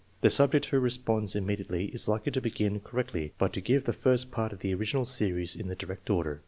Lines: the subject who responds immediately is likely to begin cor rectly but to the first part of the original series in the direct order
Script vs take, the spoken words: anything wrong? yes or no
yes